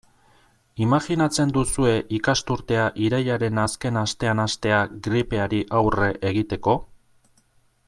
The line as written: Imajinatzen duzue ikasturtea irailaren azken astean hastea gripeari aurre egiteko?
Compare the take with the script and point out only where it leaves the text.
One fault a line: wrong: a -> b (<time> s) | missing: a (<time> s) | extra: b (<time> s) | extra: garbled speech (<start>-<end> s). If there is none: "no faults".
no faults